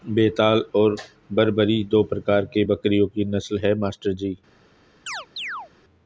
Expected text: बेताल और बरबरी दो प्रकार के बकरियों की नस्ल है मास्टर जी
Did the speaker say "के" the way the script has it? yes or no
yes